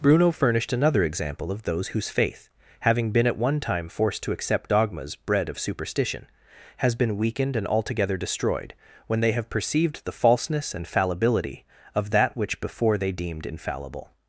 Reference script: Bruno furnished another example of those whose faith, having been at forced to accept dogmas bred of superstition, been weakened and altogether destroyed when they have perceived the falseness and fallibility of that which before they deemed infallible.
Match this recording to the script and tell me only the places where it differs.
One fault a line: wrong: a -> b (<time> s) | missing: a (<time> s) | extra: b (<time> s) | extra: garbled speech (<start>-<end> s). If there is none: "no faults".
extra: one time (3.4 s)
extra: has (6.8 s)